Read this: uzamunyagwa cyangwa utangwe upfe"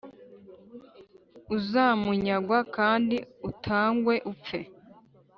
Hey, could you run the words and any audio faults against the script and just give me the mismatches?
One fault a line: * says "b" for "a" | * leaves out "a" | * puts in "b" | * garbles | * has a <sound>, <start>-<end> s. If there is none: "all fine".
* says "kandi" for "cyangwa"